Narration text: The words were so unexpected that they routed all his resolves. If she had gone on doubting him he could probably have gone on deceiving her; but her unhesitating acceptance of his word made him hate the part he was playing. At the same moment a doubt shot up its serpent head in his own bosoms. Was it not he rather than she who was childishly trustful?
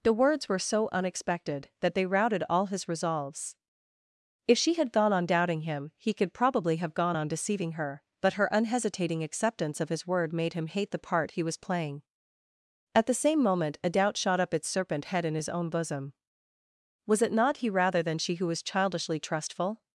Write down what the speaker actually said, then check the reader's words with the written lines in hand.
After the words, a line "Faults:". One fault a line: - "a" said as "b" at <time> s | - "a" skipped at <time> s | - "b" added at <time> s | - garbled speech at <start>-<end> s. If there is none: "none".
The words were so unexpected that they routed all his resolves. If she had gone on doubting him he could probably have gone on deceiving her; but her unhesitating acceptance of his word made him hate the part he was playing. At the same moment a doubt shot up its serpent head in his own bosom. Was it not he rather than she who was childishly trustful?
Faults:
- "bosoms" said as "bosom" at 15.7 s